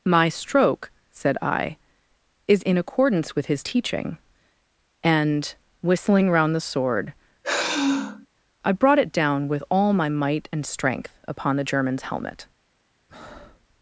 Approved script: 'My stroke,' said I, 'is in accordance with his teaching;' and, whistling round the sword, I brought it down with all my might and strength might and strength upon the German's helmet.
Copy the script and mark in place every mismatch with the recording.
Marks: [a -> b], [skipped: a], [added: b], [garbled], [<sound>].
'My stroke,' said I, 'is in accordance with his teaching;' and, whistling round the sword, [sigh] I brought it down with all my might and strength [skipped: might and strength] upon the German's helmet. [breath]